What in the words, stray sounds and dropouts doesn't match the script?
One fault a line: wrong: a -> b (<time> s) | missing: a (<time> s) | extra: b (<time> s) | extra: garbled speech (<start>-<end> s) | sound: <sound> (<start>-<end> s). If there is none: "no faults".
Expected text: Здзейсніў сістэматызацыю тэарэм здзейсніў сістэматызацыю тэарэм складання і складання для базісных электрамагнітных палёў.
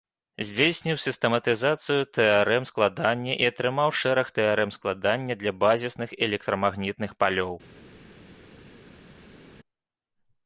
wrong: здзейсніў сістэматызацыю тэарэм складання і -> складання і атрымаў шэраг тэарэм (2.7 s)